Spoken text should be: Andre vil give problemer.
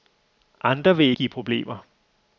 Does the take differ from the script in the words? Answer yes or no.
no